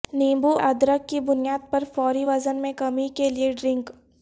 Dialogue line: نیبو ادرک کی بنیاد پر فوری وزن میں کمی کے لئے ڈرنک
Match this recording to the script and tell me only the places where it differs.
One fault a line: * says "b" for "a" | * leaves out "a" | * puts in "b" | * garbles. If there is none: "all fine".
all fine